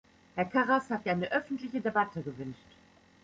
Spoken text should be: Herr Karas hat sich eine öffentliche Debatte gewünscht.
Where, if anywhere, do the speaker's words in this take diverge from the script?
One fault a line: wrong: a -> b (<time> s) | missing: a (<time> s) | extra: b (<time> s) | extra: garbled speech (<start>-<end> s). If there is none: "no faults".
missing: sich (1.1 s)